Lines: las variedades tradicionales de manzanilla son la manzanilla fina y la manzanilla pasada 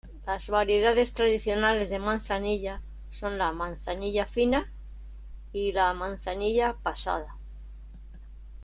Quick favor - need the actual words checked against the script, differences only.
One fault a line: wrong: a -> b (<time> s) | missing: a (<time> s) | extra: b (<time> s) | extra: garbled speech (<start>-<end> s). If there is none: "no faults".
no faults